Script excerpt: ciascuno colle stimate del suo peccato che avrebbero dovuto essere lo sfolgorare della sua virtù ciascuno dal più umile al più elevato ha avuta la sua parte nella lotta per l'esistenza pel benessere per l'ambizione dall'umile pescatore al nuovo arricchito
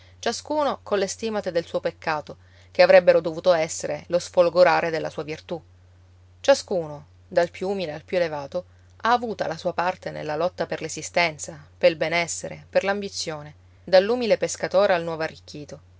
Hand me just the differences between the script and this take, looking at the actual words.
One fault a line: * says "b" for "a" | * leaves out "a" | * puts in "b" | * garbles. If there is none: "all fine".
all fine